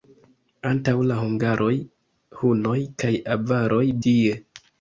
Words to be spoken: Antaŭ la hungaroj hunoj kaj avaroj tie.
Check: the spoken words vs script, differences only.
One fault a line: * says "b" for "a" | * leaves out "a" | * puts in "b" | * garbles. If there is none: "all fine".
all fine